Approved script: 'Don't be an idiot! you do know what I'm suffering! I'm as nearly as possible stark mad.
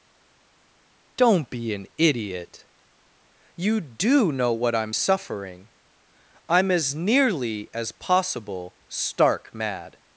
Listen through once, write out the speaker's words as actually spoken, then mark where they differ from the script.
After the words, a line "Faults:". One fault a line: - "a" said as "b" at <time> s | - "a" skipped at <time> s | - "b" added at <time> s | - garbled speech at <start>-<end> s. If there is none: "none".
'Don't be an idiot! you do know what I'm suffering! I'm as nearly as possible stark mad.
Faults:
none